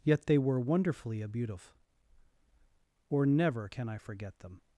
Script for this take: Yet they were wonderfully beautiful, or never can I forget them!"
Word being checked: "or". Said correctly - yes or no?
yes